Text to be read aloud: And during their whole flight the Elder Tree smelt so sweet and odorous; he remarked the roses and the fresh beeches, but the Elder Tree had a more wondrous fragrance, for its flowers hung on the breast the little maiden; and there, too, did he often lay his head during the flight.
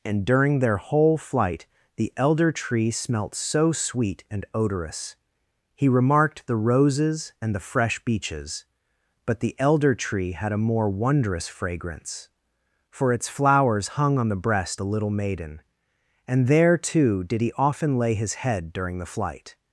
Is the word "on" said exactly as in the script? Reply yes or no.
yes